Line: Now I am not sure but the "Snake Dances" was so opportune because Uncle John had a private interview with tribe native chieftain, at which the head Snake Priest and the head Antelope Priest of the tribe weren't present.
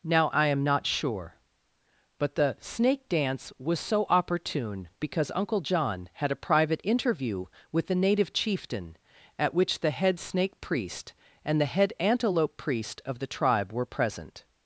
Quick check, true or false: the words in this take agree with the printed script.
false